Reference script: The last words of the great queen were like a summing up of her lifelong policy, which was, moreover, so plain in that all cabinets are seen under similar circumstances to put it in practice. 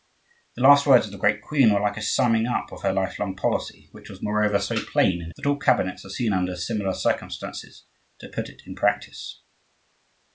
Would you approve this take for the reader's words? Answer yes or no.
yes